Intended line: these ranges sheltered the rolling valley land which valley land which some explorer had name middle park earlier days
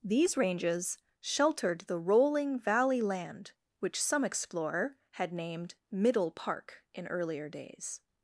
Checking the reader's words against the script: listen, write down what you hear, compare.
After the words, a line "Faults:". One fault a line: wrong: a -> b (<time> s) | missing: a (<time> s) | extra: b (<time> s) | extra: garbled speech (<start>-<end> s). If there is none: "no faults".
these ranges sheltered the rolling valley land which some explorer had named middle park in earlier days
Faults:
missing: valley land which (4.0 s)
wrong: name -> named (5.3 s)
extra: in (6.9 s)